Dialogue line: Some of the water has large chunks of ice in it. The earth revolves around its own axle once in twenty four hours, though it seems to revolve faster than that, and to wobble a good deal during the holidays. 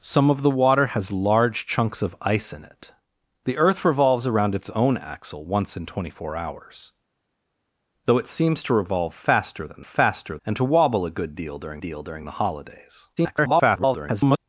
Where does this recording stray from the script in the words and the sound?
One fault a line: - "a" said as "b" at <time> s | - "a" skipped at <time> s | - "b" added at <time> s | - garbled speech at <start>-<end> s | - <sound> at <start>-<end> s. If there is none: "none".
- "that" said as "faster" at 9.8 s
- "deal during" added at 11.8 s
- garbled speech at 13.2-14.4 s